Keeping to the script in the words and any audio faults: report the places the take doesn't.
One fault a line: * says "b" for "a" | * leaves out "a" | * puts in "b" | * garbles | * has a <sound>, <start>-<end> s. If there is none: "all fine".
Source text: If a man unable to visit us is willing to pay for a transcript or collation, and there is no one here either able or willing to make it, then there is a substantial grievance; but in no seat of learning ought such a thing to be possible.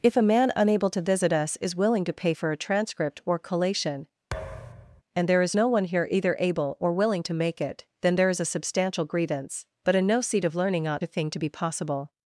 * has a thud, 4.3-5.0 s
* leaves out "such"